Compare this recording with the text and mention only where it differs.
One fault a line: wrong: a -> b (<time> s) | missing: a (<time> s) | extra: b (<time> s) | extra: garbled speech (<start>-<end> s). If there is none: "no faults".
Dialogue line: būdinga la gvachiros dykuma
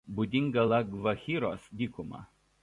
no faults